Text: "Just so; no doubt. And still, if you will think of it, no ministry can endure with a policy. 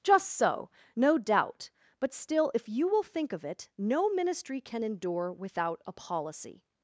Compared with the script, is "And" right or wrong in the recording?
wrong